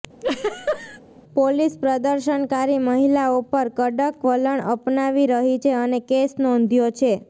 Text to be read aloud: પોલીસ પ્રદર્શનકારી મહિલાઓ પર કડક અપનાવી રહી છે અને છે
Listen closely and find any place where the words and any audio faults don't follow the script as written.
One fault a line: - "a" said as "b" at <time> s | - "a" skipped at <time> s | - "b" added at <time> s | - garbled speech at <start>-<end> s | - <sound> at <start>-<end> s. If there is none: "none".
- laugh at 0.2-1.0 s
- "વલણ" added at 4.2 s
- "કેસ નોંધ્યો" added at 6.1 s